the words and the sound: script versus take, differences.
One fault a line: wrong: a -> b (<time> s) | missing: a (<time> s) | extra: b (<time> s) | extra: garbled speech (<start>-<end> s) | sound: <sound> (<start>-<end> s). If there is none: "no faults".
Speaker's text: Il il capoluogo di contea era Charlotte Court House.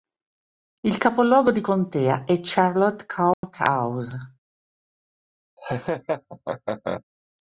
missing: il (1.0 s)
wrong: era -> è (2.2 s)
sound: dropout (3.3-3.4 s)
sound: laugh (5.6-7.0 s)